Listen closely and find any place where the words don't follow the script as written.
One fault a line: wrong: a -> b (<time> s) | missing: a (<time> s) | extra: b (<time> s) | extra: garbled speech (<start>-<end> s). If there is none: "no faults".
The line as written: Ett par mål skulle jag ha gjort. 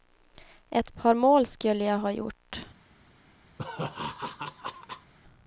no faults